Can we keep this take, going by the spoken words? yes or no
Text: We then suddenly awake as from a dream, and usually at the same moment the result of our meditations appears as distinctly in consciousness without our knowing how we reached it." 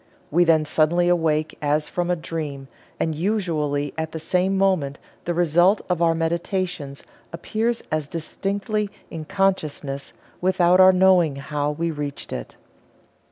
yes